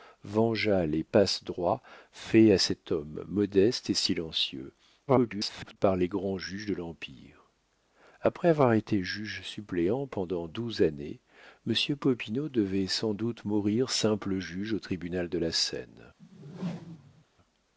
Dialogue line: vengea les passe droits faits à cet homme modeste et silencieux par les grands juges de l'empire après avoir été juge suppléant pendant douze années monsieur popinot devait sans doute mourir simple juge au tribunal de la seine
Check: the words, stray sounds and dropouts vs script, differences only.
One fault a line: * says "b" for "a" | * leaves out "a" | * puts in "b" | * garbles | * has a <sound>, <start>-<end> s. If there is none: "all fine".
* garbles
* has a whoosh, 16.2-17.3 s